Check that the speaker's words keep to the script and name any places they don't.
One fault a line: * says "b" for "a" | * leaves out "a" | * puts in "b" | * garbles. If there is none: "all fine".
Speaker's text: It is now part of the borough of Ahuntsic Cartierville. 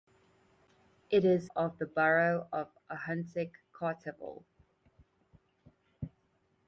* leaves out "now part"